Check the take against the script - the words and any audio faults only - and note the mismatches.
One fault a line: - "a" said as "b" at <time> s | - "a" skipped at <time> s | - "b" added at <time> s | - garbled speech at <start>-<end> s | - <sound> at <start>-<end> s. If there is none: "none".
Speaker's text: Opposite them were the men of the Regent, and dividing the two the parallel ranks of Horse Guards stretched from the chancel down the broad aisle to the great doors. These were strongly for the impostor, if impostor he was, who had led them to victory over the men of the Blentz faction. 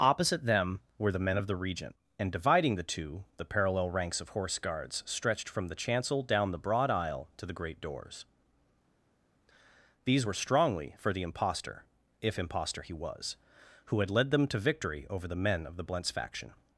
none